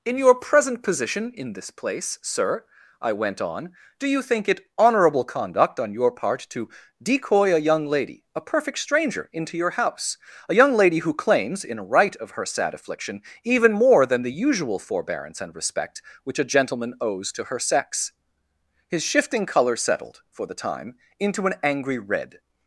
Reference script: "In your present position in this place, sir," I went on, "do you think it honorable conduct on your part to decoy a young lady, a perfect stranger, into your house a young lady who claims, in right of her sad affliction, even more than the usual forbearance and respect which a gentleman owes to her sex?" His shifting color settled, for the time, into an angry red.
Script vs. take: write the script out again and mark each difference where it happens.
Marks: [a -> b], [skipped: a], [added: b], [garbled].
"In your present position in this place, sir," I went on, "do you think it honorable conduct on your part to decoy a young lady, a perfect stranger, into your house a young lady who claims, in right of her sad affliction, even more than the usual forbearance and respect which a gentleman owes to her sex?" His shifting color settled, for the time, into an angry red.